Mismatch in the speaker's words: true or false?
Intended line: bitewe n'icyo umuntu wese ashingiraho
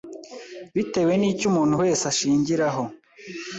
false